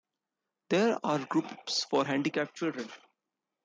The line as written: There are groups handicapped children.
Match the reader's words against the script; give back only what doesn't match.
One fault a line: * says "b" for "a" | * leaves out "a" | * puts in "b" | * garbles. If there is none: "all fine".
* puts in "for"